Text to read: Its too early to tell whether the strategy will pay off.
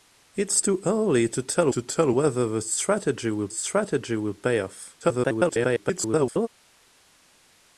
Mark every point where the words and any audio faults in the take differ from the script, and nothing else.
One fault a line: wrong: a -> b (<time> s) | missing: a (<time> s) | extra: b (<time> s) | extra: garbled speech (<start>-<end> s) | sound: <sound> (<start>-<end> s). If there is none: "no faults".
extra: to tell (1.7 s)
extra: strategy will (3.5 s)
extra: garbled speech (5.0-6.5 s)